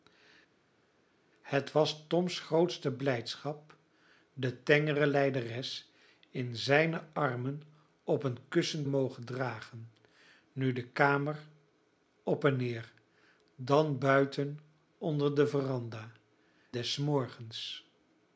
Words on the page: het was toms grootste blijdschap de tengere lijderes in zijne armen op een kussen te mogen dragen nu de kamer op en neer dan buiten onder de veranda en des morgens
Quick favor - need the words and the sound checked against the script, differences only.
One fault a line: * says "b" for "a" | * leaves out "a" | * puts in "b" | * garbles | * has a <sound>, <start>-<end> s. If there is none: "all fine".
* leaves out "te"
* leaves out "en"